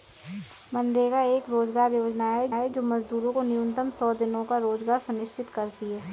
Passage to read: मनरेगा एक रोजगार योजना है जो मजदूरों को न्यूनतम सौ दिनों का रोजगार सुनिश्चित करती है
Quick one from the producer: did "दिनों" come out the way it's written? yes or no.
yes